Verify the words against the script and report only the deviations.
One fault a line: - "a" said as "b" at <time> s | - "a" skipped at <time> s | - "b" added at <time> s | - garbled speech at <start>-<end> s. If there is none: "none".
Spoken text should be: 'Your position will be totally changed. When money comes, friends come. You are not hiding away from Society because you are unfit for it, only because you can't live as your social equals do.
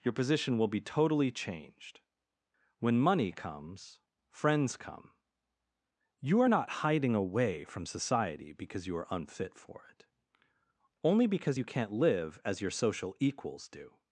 none